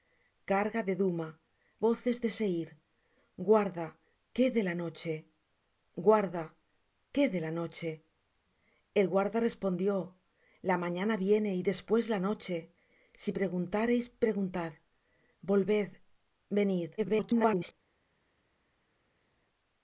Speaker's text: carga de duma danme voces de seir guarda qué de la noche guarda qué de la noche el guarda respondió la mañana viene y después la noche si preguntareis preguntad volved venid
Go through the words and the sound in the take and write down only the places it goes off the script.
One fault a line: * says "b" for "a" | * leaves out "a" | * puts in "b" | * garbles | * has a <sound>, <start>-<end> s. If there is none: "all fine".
* leaves out "danme"
* garbles